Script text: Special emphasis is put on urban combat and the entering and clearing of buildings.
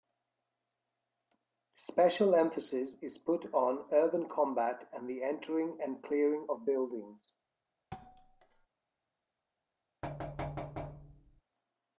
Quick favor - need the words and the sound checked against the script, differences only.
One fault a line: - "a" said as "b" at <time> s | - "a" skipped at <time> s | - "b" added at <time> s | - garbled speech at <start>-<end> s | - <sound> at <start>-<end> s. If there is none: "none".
- thud at 7.9-8.7 s
- thud at 10.0-11.4 s